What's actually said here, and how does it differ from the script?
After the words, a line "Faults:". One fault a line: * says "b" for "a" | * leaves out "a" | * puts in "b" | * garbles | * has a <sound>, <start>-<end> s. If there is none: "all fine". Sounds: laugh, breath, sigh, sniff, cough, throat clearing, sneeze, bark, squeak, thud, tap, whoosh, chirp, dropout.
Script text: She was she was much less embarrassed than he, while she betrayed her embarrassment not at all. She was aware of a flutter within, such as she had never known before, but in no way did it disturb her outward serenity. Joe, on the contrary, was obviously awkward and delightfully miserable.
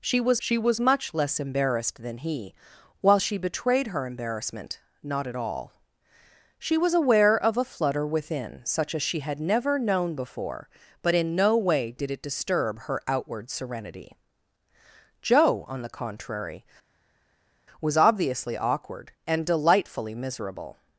She was she was much less embarrassed than he, while she betrayed her embarrassment not at all. She was aware of a flutter within, such as she had never known before, but in no way did it disturb her outward serenity. Joe, on the contrary, was obviously awkward and delightfully miserable.
Faults:
all fine